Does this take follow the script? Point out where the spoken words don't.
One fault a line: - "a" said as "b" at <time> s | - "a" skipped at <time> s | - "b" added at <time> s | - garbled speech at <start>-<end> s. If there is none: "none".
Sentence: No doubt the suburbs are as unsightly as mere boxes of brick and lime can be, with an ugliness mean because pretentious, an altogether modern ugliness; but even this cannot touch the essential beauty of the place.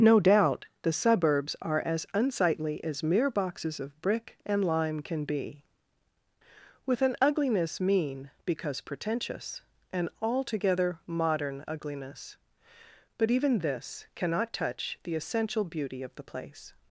none